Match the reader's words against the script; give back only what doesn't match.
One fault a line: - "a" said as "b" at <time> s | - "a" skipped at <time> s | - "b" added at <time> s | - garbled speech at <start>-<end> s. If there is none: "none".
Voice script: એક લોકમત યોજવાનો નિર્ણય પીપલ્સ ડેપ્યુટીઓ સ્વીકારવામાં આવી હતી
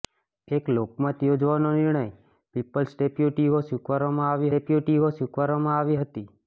- "ડેપ્યુટીઓ સ્વીકારવામાં આવી" added at 4.5 s